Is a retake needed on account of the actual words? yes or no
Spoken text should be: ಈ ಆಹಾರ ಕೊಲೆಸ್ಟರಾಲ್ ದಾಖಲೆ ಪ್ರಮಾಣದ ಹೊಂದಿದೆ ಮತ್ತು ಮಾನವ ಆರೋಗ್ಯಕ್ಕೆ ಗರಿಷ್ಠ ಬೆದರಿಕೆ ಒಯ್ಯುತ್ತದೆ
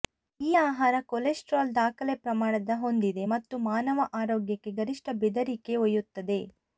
no